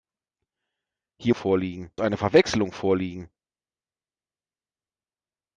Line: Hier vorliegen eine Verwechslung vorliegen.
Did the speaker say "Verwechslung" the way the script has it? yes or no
yes